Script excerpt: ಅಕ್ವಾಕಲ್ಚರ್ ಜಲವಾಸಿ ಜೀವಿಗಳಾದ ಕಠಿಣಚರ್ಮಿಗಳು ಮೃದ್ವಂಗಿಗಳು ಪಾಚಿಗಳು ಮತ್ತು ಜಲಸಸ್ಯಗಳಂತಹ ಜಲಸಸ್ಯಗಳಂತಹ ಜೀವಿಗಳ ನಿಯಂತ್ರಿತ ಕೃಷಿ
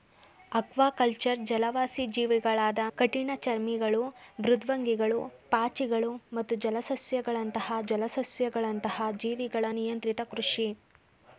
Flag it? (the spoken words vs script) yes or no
no